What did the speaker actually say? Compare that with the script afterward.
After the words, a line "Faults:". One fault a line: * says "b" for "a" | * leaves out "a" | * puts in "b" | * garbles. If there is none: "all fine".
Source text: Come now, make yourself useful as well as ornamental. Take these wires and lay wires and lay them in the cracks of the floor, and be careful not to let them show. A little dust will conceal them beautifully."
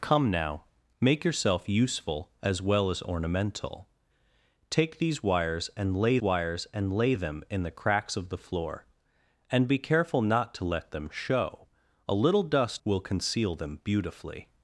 Come now, make yourself useful as well as ornamental. Take these wires and lay wires and lay them in the cracks of the floor, and be careful not to let them show. A little dust will conceal them beautifully."
Faults:
all fine